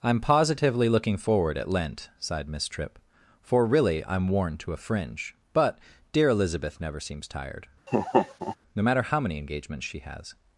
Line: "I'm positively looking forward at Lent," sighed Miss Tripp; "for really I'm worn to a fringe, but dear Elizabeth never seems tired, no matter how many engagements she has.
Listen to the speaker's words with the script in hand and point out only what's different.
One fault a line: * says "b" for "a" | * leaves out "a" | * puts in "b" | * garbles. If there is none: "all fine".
all fine